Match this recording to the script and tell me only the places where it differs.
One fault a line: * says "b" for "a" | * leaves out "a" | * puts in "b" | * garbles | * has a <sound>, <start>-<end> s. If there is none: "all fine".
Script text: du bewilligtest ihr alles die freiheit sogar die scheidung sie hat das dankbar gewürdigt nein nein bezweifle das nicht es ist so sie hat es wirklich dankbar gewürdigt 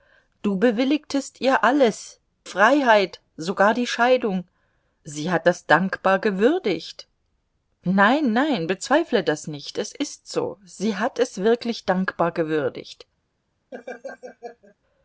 * leaves out "die"
* has a laugh, 13.7-14.8 s